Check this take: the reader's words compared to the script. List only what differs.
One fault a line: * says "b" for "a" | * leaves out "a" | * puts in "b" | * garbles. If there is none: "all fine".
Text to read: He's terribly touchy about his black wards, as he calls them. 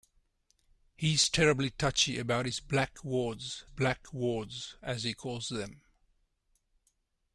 * puts in "black wards"